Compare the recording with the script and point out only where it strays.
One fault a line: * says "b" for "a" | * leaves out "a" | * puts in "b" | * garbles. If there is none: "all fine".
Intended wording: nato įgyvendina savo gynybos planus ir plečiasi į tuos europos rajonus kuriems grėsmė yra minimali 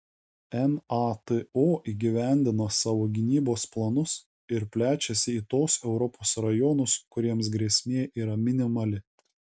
all fine